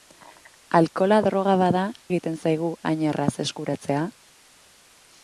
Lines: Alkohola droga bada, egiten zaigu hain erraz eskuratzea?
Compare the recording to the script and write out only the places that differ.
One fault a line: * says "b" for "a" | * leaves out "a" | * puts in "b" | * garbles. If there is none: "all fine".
all fine